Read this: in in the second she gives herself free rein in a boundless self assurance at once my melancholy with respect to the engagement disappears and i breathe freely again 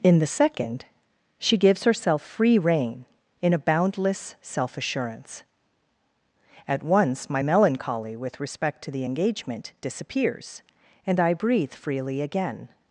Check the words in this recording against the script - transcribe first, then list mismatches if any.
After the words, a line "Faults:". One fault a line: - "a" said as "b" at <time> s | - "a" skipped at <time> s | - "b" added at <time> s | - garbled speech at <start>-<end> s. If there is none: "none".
in the second she gives herself free rein in a boundless self assurance at once my melancholy with respect to the engagement disappears and i breathe freely again
Faults:
- "in" skipped at 0.2 s